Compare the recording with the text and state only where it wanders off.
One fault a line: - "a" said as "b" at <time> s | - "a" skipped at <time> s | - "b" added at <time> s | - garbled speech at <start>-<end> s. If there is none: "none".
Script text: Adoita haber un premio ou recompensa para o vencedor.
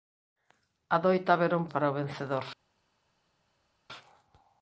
- "premio ou recompensa" skipped at 1.6 s